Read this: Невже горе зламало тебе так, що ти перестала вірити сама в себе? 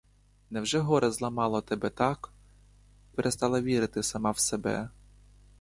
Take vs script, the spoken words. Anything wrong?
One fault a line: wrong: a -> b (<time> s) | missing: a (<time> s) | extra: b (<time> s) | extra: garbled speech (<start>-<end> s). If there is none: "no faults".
missing: що ти (2.3 s)